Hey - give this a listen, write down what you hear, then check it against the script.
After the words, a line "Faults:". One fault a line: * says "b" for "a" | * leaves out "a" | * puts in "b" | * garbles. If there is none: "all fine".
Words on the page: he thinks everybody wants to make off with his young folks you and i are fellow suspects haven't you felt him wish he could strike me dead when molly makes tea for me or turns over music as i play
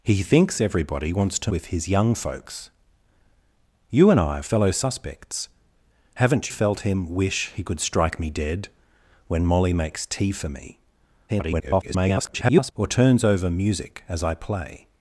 he thinks everybody wants to with his young folks you and i are fellow suspects haven't felt him wish he could strike me dead when molly makes tea for me [garbled] or turns over music as i play
Faults:
* leaves out "make off"
* leaves out "you"
* garbles